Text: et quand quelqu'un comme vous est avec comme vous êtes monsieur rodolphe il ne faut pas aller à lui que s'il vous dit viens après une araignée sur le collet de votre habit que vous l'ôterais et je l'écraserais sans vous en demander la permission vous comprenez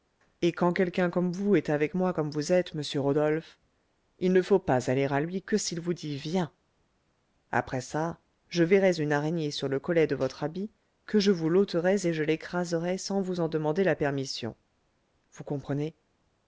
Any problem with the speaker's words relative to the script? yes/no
yes